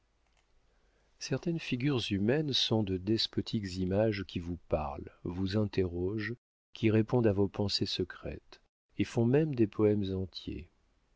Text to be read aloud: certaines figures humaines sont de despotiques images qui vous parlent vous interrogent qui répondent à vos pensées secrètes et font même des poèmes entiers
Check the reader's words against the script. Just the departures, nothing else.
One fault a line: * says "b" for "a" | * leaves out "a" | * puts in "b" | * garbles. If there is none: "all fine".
all fine